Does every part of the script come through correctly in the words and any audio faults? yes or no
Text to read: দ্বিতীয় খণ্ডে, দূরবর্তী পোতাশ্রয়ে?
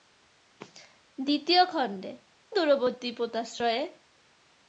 yes